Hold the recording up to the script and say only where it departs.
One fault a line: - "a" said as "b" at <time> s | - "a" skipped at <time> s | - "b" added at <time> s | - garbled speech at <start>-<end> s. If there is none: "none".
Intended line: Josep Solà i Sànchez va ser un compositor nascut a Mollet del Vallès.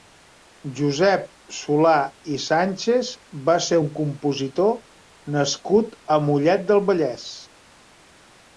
none